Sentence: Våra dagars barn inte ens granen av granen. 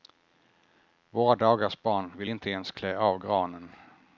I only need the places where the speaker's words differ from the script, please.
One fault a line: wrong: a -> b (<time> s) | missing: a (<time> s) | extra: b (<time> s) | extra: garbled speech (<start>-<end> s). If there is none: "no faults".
extra: vill (2.2 s)
wrong: granen -> klä (2.7 s)